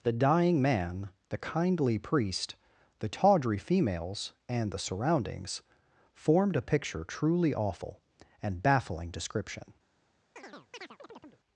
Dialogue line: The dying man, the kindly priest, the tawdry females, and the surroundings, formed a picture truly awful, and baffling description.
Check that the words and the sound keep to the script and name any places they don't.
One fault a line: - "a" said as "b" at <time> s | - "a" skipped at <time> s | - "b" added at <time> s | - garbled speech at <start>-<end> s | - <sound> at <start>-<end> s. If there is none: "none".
- chirp at 10.4-11.4 s